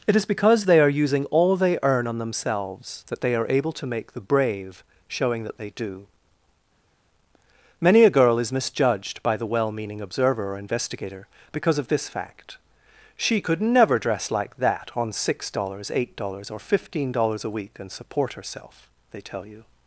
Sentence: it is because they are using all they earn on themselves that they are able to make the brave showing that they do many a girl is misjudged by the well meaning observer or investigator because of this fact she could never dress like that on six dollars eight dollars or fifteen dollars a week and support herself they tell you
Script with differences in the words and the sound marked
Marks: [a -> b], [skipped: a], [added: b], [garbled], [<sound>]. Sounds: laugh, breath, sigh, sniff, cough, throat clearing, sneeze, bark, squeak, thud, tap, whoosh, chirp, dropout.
it is because they are using all they earn on themselves that they are able to make the brave showing that they do many a girl is misjudged by the well meaning observer or investigator because of this fact she could never dress like that on six dollars eight dollars or fifteen dollars a week and support herself they tell you